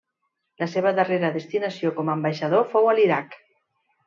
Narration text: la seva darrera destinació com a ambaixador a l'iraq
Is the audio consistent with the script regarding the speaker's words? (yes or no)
no